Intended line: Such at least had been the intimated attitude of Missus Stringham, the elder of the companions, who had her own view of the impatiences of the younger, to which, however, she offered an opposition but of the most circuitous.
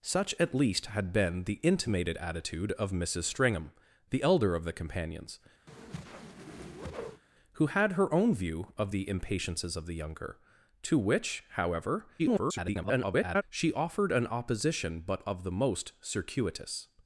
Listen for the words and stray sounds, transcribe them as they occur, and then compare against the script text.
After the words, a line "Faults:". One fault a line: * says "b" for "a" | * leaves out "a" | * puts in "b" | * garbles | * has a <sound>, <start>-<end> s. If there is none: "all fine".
Such at least had been the intimated attitude of Missus Stringham, the elder of the companions, who had her own view of the impatiences of the younger, to which, however, [garbled] she offered an opposition but of the most circuitous.
Faults:
* has a whoosh, 5.7-7.2 s
* garbles